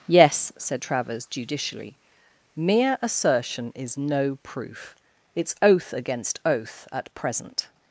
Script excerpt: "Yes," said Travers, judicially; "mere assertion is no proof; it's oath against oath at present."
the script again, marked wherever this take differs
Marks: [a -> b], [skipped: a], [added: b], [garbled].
"Yes," said Travers, judicially; "mere assertion is no proof; it's oath against oath at present."